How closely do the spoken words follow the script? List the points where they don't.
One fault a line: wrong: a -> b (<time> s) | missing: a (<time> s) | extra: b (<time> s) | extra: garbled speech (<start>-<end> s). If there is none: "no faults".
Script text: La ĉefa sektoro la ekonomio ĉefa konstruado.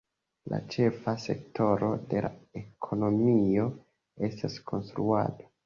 extra: de (2.1 s)
wrong: ĉefa -> estas (4.3 s)